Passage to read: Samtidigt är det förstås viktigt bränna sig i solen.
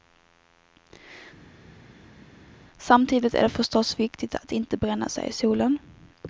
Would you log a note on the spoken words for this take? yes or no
yes